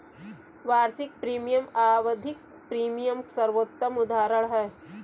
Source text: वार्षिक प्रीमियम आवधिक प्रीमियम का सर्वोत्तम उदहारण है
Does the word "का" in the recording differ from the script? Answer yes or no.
yes